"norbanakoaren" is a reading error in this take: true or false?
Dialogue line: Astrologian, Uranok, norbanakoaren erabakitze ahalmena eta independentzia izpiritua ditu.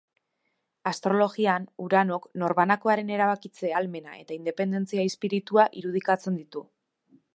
false